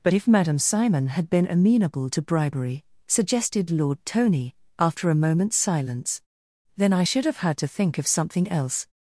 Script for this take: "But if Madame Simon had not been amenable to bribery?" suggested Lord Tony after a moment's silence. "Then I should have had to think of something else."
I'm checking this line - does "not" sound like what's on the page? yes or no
no